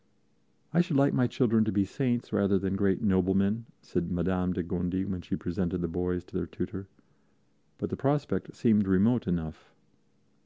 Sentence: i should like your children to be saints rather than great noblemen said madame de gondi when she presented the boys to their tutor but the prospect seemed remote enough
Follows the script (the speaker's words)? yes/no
no